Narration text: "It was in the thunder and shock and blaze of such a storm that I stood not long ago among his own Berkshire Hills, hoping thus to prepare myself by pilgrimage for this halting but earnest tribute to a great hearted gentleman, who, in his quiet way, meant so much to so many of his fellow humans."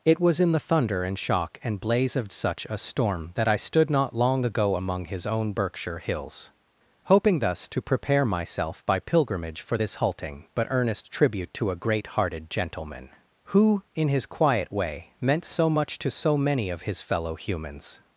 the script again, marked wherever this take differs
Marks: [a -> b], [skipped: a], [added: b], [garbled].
"It was in the thunder and shock and blaze of such a storm that I stood not long ago among his own Berkshire Hills, hoping thus to prepare myself by pilgrimage for this halting but earnest tribute to a great hearted gentleman, who, in his quiet way, meant so much to so many of his fellow humans."